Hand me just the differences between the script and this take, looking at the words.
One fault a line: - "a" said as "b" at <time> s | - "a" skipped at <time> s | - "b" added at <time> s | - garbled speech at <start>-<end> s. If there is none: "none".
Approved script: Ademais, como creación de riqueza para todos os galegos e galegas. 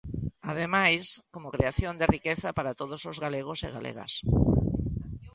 none